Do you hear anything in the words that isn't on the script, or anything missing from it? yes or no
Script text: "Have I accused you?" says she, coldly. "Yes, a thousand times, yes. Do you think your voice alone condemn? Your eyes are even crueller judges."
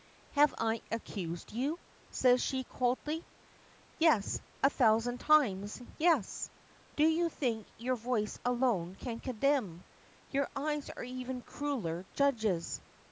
yes